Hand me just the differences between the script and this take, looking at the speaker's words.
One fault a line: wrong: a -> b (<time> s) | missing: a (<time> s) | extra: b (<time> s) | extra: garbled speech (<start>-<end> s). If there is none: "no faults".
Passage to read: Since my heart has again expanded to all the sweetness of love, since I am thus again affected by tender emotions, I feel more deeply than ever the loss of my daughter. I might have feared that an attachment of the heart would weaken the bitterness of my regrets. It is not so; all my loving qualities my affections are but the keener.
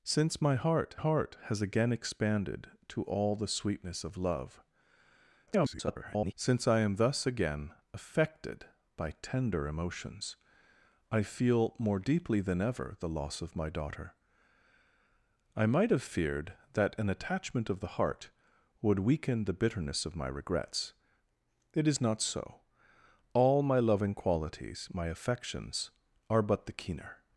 extra: heart (0.9 s)
extra: garbled speech (5.5-6.3 s)